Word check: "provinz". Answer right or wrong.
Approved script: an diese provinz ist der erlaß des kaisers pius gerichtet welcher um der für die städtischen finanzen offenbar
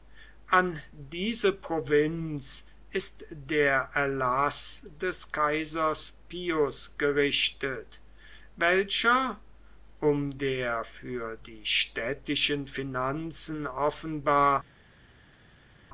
right